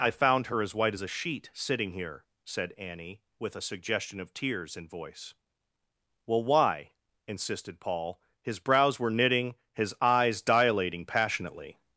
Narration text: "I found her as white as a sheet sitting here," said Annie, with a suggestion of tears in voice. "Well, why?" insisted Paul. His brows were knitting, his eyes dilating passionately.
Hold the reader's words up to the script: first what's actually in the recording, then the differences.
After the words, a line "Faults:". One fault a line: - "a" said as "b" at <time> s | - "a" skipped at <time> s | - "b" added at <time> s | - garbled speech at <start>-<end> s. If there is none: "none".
"I found her as white as a sheet sitting here," said Annie, with a suggestion of tears in voice. "Well, why?" insisted Paul. His brows were knitting, his eyes dilating passionately.
Faults:
none